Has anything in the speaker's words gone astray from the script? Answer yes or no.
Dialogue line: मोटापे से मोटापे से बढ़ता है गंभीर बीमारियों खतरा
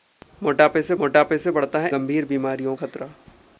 no